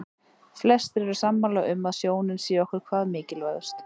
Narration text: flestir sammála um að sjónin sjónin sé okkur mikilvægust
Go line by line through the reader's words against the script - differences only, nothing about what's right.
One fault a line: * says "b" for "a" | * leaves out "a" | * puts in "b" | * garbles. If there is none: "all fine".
* puts in "eru"
* leaves out "sjónin"
* puts in "hvað"